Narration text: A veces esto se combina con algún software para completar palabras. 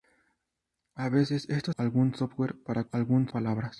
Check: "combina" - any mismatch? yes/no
yes